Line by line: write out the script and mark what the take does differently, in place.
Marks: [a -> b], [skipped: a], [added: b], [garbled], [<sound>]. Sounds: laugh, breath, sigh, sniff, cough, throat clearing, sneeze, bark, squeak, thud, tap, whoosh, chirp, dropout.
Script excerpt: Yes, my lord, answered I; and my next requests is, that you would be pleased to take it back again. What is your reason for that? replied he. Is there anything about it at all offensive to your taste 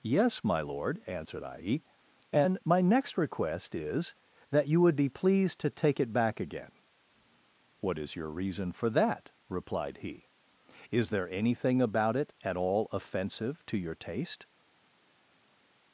Yes, my lord, answered I; and my next [requests -> request] is, that you would be pleased to take it back again. What is your reason for that? replied he. Is there anything about it at all offensive to your taste